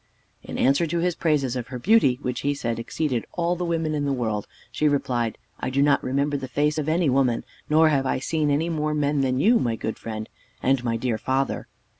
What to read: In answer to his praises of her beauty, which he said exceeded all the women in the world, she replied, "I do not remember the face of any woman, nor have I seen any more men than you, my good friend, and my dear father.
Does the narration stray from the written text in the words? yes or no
no